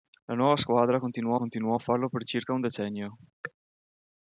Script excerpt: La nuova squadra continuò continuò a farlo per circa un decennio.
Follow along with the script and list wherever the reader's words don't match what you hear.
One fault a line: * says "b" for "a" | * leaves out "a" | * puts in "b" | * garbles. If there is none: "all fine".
all fine